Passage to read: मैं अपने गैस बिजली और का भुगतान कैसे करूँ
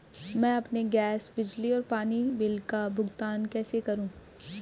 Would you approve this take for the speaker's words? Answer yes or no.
no